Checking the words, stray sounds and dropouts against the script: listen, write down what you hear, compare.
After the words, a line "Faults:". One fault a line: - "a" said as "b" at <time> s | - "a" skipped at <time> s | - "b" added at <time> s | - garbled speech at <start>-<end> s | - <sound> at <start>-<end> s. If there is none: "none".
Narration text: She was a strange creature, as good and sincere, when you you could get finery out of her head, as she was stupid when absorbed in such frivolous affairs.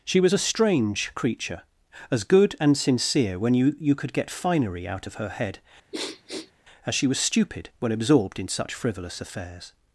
She was a strange creature, as good and sincere, when you you could get finery out of her head, as she was stupid when absorbed in such frivolous affairs.
Faults:
- sniff at 5.9-6.5 s